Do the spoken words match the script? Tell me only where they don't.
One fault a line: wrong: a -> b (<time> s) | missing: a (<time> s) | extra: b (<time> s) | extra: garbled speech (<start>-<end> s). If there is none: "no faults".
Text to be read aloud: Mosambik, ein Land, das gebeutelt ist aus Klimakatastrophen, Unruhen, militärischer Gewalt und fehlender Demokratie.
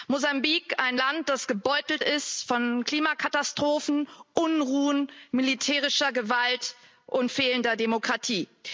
wrong: aus -> von (2.5 s)